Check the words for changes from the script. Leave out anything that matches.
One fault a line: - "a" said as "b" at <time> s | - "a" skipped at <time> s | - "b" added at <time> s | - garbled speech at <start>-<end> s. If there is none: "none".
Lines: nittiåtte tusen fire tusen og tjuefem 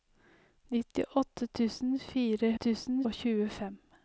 none